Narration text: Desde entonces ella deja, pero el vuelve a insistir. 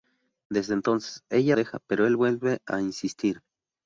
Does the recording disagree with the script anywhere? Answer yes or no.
no